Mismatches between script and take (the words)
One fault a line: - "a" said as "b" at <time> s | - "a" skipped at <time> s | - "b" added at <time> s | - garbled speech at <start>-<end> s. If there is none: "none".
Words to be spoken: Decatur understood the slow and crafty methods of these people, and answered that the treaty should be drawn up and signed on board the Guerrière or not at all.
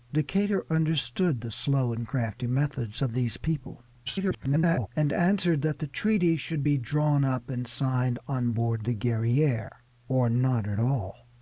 - garbled speech at 4.1-4.9 s